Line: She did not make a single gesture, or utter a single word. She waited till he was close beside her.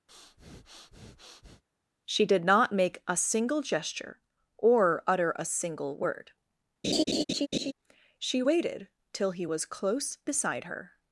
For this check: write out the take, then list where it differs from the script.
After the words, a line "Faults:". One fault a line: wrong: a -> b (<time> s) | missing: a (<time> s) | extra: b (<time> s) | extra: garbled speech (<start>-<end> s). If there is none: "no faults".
She did not make a single gesture, or utter a single word. She waited till he was close beside her.
Faults:
no faults